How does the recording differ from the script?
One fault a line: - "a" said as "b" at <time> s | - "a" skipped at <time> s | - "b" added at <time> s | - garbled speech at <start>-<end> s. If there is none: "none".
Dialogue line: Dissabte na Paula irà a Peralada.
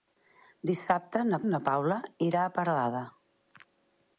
- "na" added at 1.5 s